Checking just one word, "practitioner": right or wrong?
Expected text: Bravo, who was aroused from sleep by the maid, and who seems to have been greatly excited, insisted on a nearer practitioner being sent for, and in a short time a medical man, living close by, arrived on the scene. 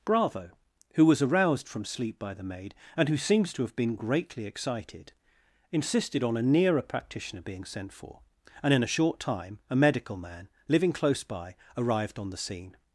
right